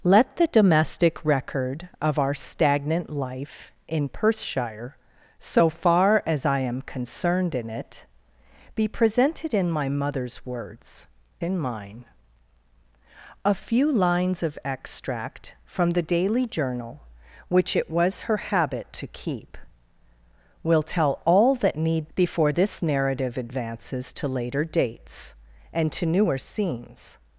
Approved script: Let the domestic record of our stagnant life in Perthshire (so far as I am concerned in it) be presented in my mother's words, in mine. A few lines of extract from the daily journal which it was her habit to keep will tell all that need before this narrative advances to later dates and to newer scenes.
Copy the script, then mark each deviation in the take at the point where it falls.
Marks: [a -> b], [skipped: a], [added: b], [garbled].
Let the domestic record of our stagnant life in Perthshire (so far as I am concerned in it) be presented in my mother's words, in mine. A few lines of extract from the daily journal which it was her habit to keep will tell all that need before this narrative advances to later dates and to newer scenes.